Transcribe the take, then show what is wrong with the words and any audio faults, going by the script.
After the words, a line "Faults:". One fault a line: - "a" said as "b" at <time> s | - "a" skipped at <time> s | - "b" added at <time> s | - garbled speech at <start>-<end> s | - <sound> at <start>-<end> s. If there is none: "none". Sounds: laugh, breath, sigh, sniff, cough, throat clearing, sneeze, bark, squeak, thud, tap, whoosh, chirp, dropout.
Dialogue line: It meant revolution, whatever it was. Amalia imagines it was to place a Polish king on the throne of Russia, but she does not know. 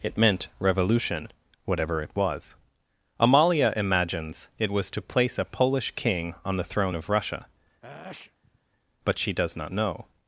It meant revolution, whatever it was. Amalia imagines it was to place a Polish king on the throne of Russia, but she does not know.
Faults:
- sneeze at 7.8-8.6 s